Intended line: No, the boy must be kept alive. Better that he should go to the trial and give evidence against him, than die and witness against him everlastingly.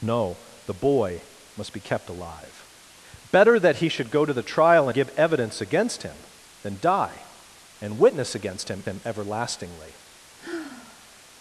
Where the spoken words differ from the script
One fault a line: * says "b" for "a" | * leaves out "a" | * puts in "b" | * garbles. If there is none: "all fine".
* leaves out "and"
* puts in "him"